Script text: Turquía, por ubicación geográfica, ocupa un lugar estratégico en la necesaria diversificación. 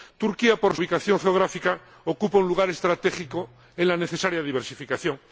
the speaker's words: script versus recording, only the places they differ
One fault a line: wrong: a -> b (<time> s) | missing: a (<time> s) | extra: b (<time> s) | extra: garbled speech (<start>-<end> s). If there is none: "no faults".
no faults